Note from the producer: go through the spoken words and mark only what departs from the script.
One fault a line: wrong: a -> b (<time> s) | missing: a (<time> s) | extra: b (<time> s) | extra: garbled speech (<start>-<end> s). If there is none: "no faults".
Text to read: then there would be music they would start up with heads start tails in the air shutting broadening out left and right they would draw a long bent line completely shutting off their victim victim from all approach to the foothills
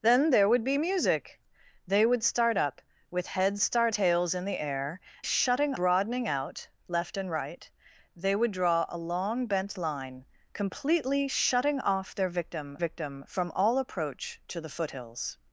no faults